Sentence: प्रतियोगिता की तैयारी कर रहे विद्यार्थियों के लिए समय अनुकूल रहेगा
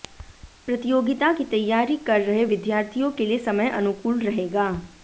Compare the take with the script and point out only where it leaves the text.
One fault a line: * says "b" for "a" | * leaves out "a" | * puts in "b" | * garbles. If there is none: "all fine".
all fine